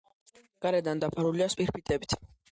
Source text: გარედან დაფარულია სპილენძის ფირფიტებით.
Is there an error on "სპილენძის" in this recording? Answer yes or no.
yes